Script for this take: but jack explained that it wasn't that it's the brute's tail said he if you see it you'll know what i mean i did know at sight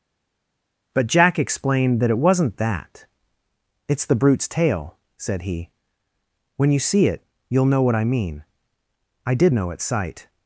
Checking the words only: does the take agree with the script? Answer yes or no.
no